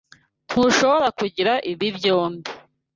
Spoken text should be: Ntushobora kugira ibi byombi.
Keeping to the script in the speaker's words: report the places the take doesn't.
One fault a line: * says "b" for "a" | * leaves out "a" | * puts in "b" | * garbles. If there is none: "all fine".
all fine